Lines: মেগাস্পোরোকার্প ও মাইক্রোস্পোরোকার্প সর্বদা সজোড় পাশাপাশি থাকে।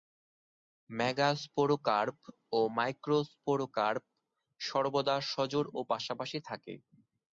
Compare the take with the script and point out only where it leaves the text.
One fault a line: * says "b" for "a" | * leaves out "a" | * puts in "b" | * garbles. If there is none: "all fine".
* puts in "ও"